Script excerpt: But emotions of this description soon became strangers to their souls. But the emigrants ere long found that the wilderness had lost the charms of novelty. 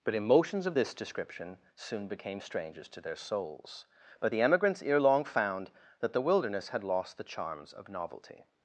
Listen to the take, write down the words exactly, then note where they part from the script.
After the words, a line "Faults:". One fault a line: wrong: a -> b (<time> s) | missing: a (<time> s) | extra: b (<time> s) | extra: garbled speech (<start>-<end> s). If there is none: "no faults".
But emotions of this description soon became strangers to their souls. But the emigrants ere long found that the wilderness had lost the charms of novelty.
Faults:
no faults